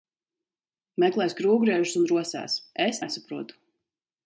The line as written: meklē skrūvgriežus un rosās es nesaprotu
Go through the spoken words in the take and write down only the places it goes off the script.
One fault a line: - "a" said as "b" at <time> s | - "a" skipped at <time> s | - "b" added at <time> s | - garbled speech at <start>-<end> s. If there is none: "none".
none